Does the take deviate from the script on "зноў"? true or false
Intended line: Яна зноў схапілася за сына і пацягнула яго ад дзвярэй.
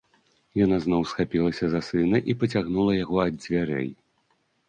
false